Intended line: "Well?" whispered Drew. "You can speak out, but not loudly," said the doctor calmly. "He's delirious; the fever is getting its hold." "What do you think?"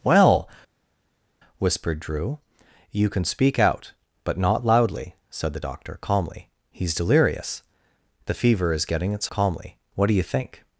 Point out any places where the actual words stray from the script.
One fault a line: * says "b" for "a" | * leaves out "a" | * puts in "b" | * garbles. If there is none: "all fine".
* says "calmly" for "hold"